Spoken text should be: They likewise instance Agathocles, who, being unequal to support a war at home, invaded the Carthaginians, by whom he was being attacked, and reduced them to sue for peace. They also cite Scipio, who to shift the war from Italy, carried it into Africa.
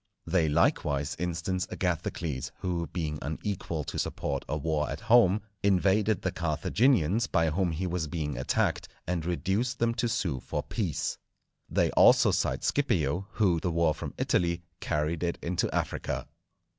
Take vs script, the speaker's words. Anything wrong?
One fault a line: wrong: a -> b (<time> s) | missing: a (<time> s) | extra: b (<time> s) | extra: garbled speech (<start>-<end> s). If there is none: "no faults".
missing: to shift (13.6 s)